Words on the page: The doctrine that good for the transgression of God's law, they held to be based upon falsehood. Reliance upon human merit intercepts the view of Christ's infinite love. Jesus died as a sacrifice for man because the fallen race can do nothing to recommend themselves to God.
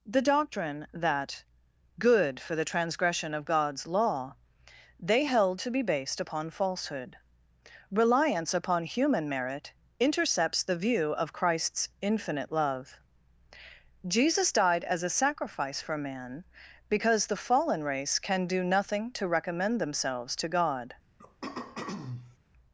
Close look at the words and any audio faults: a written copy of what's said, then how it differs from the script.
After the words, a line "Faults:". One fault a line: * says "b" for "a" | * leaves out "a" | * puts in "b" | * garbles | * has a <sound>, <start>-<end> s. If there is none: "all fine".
The doctrine that good for the transgression of God's law, they held to be based upon falsehood. Reliance upon human merit intercepts the view of Christ's infinite love. Jesus died as a sacrifice for man because the fallen race can do nothing to recommend themselves to God.
Faults:
* has a throat clearing, 21.2-22.4 s